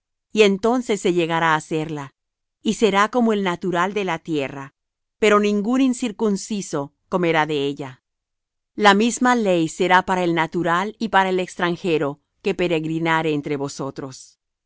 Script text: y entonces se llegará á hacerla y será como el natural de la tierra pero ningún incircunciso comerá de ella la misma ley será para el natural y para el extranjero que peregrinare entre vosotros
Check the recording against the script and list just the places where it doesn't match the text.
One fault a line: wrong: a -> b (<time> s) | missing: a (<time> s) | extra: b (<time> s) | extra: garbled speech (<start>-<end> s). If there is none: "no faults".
no faults